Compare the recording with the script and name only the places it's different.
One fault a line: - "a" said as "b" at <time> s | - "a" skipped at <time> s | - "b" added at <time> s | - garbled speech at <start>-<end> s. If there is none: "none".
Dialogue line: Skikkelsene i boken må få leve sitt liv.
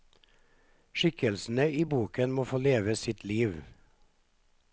none